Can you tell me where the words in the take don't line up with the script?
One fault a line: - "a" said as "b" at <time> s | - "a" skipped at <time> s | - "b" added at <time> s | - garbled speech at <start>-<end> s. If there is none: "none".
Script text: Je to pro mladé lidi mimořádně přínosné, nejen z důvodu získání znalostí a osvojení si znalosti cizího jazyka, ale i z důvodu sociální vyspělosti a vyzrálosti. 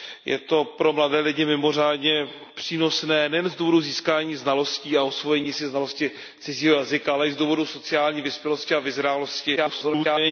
- garbled speech at 9.6-10.3 s